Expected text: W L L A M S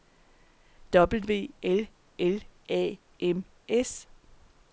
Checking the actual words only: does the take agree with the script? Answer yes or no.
yes